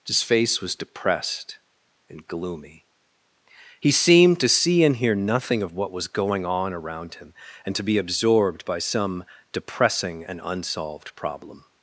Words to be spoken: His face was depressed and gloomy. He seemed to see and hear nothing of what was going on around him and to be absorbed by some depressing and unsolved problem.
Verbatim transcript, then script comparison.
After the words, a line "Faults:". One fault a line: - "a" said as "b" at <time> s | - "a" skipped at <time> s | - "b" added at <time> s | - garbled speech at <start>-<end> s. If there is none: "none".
His face was depressed and gloomy. He seemed to see and hear nothing of what was going on around him and to be absorbed by some depressing and unsolved problem.
Faults:
none